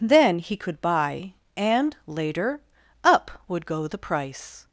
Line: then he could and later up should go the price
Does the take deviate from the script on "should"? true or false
true